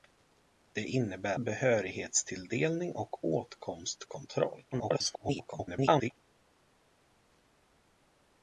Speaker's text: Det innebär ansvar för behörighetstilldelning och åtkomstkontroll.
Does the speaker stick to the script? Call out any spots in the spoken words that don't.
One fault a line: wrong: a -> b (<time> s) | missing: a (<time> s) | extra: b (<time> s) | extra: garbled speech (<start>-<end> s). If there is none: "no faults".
missing: ansvar för (1.4 s)
extra: garbled speech (4.7-6.1 s)